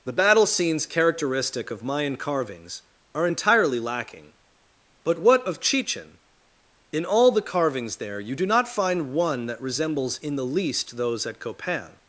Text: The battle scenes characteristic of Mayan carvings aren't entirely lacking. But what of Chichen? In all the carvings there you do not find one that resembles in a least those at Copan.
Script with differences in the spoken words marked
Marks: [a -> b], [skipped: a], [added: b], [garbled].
The battle scenes characteristic of Mayan carvings [aren't -> are] entirely lacking. But what of Chichen? In all the carvings there you do not find one that resembles in [a -> the] least those at Copan.